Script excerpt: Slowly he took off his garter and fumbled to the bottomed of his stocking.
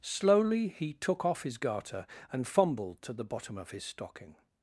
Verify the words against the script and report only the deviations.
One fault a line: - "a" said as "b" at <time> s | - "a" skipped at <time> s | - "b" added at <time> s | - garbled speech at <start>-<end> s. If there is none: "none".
- "bottomed" said as "bottom" at 3.2 s